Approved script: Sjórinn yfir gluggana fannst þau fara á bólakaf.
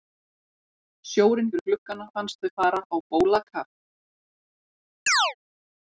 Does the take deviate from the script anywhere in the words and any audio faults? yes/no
yes